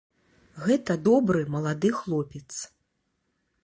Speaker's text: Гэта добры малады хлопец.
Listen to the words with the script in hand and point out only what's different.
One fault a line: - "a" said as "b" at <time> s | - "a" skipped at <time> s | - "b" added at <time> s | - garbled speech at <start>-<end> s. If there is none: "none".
none